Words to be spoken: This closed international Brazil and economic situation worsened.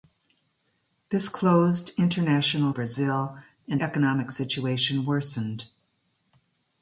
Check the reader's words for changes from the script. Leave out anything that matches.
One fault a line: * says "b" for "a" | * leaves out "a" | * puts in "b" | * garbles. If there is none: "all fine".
all fine